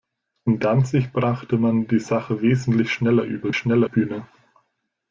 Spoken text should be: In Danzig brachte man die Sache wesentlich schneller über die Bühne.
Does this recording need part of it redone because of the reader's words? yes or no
yes